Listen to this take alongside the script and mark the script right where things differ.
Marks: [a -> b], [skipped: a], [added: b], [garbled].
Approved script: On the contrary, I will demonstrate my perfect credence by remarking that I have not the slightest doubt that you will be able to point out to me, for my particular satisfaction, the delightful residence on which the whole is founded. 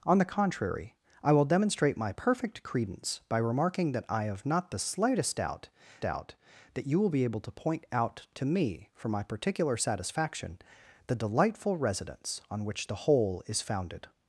On the contrary, I will demonstrate my perfect credence by remarking that I have not the slightest doubt [added: doubt] that you will be able to point out to me, for my particular satisfaction, the delightful residence on which the whole is founded.